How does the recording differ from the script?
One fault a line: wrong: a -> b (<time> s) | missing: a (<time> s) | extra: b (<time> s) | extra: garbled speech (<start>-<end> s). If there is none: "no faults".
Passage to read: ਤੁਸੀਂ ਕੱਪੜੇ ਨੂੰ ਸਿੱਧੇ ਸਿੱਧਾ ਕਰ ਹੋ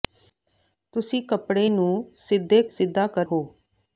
no faults